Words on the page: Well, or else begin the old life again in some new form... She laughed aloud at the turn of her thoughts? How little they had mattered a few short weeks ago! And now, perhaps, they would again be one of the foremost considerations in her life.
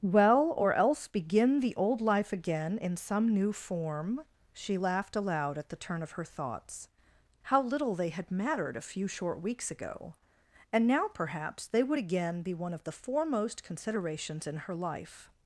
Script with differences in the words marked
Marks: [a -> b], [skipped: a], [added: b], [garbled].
Well, or else begin the old life again in some new form... She laughed aloud at the turn of her thoughts? How little they had mattered a few short weeks ago! And now, perhaps, they would again be one of the foremost considerations in her life.